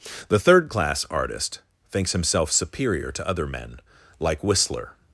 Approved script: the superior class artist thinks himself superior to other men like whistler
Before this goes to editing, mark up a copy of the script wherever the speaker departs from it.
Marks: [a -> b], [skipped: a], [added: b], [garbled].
the [superior -> third] class artist thinks himself superior to other men like whistler